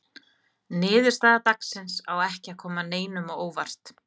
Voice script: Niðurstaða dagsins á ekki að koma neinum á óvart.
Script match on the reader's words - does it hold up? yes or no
yes